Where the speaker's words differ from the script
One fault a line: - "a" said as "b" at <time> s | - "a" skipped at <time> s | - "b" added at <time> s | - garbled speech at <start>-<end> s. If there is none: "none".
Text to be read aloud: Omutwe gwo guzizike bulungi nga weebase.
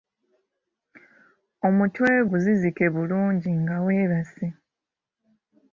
- "gwo" skipped at 2.1 s